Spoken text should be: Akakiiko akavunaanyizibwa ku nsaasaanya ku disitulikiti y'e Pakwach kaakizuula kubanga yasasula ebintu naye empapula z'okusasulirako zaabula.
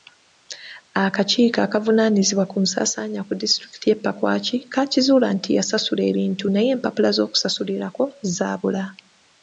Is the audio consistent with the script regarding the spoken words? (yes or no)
no